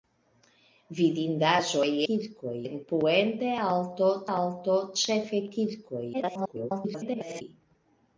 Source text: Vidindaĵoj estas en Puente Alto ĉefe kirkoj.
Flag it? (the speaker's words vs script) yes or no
yes